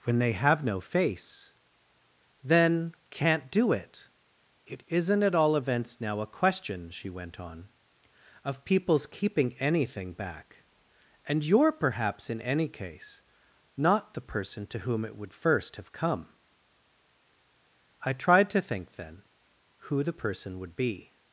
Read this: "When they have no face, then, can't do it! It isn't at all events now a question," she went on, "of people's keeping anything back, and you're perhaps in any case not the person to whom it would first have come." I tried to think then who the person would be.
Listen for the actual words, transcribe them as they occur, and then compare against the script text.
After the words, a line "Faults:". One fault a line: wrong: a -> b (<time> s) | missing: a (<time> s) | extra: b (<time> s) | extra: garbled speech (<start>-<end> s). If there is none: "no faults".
"When they have no face, then, can't do it! It isn't at all events now a question," she went on, "of people's keeping anything back, and you're perhaps in any case not the person to whom it would first have come." I tried to think then who the person would be.
Faults:
no faults